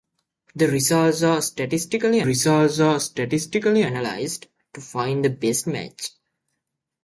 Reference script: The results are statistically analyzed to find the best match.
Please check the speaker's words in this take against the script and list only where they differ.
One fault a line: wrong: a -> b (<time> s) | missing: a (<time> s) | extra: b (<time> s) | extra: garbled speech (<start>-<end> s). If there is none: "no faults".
extra: results are statistically (2.2 s)